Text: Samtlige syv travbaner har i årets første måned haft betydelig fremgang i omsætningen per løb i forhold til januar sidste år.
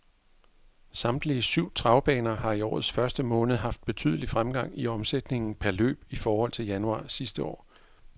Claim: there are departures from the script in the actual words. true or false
false